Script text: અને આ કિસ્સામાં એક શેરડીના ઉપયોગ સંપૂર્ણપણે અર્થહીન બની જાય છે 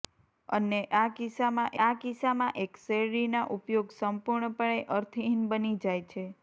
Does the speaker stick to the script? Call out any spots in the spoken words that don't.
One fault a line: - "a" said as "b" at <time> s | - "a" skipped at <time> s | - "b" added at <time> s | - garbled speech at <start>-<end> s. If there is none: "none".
- "આ કિસ્સામાં" added at 1.8 s